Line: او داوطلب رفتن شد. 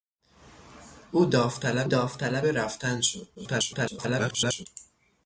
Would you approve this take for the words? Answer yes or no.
no